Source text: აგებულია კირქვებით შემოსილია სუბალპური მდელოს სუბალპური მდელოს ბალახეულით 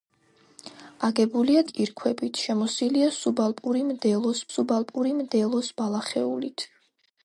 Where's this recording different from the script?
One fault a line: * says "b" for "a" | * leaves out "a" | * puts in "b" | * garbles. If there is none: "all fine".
all fine